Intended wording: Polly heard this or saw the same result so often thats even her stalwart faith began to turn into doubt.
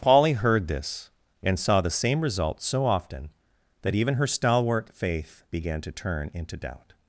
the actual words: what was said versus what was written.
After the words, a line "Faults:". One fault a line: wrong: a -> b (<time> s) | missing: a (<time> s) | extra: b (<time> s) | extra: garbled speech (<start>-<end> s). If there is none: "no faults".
Polly heard this and saw the same result so often that even her stalwart faith began to turn into doubt.
Faults:
wrong: or -> and (1.4 s)
wrong: thats -> that (3.8 s)